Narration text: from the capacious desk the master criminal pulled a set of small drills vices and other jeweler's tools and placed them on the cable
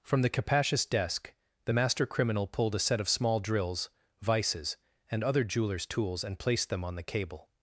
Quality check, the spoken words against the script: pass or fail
pass